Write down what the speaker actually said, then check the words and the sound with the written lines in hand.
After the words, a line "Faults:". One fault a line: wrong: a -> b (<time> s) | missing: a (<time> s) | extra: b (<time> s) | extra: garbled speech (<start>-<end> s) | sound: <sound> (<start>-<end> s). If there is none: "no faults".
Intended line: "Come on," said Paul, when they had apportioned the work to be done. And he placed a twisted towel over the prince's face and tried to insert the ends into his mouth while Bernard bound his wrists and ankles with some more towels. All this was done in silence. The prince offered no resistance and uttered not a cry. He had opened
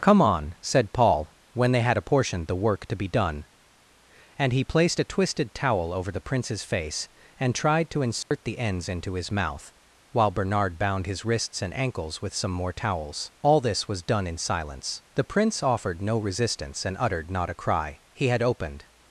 "Come on," said Paul, when they had apportioned the work to be done. And he placed a twisted towel over the prince's face and tried to insert the ends into his mouth while Bernard bound his wrists and ankles with some more towels. All this was done in silence. The prince offered no resistance and uttered not a cry. He had opened
Faults:
sound: dropout (8.2-8.3 s)